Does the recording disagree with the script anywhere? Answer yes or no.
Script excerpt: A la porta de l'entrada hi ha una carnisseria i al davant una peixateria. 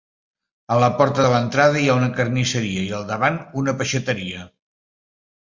no